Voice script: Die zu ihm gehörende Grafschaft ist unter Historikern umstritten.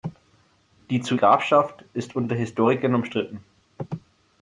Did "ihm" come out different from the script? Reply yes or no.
yes